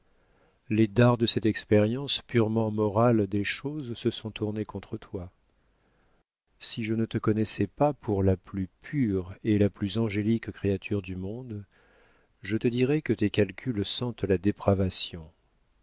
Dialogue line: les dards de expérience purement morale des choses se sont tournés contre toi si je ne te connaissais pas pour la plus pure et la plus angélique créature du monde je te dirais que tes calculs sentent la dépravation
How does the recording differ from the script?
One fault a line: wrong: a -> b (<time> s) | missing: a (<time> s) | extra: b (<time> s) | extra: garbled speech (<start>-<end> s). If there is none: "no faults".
extra: cette (1.3 s)